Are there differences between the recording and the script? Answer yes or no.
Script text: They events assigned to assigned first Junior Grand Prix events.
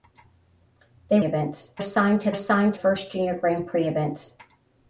no